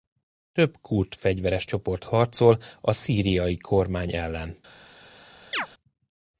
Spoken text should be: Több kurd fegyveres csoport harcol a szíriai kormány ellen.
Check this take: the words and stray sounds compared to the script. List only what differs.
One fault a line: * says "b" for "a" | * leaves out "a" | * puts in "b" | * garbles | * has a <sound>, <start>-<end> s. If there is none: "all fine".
* has a chirp, 5.5-5.7 s